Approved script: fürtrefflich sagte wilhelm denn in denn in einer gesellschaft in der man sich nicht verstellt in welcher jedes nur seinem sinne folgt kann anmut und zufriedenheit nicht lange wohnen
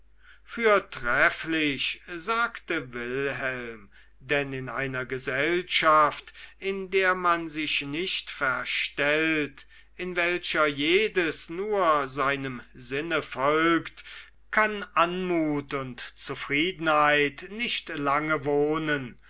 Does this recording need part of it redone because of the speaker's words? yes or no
yes